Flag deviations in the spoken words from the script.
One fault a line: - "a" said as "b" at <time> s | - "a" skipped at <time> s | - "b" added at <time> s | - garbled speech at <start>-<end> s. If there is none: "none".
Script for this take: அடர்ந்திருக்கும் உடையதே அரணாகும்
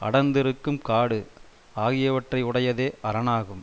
- "காடு ஆகியவற்றை" added at 0.8 s